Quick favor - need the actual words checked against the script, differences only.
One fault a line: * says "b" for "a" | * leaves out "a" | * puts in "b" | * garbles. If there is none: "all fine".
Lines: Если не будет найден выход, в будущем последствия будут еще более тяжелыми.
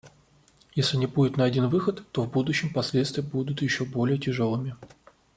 * puts in "то"